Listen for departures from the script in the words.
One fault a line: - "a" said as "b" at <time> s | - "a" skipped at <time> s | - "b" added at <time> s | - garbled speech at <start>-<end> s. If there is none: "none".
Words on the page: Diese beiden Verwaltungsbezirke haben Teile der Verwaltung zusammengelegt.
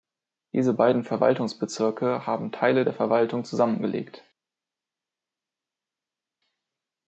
none